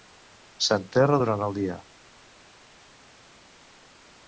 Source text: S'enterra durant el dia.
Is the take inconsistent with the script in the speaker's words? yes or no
no